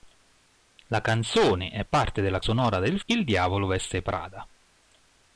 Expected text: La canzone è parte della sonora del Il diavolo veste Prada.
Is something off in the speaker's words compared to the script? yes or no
no